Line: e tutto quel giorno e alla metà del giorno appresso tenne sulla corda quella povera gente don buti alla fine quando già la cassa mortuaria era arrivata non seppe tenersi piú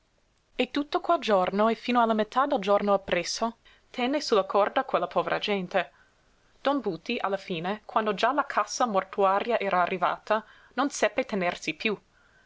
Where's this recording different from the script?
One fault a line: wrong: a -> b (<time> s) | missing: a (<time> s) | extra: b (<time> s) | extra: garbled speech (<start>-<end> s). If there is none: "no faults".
extra: fino (1.8 s)